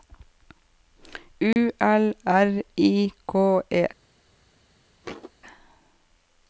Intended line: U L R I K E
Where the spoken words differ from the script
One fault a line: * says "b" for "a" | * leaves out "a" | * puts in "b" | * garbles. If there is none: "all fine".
all fine